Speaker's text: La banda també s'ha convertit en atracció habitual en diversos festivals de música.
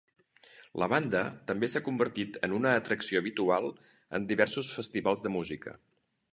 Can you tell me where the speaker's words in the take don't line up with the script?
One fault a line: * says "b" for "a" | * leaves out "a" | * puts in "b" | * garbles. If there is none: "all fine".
* puts in "una"